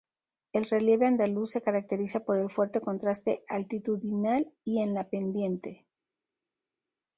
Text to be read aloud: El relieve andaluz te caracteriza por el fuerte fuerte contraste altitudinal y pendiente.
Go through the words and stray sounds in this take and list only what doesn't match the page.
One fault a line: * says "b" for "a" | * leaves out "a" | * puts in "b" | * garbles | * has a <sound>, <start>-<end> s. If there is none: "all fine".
* says "se" for "te"
* leaves out "fuerte"
* puts in "en la"